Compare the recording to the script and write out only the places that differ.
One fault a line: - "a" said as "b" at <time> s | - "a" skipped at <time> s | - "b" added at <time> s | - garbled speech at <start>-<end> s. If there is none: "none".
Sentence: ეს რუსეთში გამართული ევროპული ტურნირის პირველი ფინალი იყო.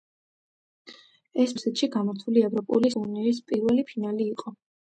none